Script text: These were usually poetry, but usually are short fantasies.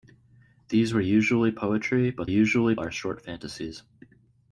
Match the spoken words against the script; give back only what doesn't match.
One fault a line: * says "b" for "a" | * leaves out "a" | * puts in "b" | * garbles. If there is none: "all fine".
all fine